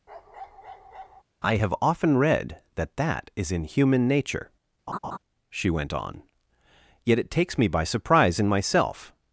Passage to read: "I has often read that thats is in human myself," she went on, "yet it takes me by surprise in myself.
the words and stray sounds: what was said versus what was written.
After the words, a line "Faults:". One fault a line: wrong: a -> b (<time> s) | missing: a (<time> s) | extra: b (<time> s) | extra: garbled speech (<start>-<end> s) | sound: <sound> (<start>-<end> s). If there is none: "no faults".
"I have often read that that is in human nature," she went on, "yet it takes me by surprise in myself.
Faults:
sound: bark (0.1-1.2 s)
wrong: has -> have (1.6 s)
wrong: thats -> that (3.0 s)
wrong: myself -> nature (4.1 s)
sound: laugh (4.9-5.2 s)